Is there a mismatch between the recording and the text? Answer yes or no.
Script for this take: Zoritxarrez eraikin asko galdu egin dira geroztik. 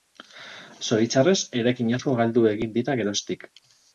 no